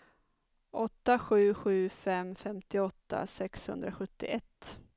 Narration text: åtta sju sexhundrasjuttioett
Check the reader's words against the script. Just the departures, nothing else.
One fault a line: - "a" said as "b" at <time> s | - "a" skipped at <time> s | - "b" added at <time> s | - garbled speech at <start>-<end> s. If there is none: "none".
- "sju fem femtioåtta" added at 1.5 s